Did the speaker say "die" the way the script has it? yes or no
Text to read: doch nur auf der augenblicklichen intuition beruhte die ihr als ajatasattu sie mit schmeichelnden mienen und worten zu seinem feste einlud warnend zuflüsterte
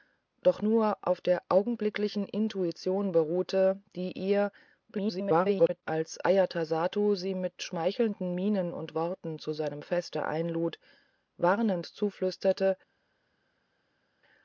yes